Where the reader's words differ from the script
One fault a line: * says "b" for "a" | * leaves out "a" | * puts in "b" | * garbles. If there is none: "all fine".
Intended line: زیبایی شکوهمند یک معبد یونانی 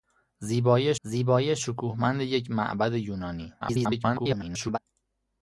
* puts in "زیبایی"
* garbles